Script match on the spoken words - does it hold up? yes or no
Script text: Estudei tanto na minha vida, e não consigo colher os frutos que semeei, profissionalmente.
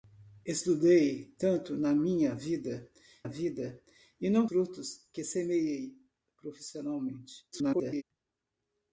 no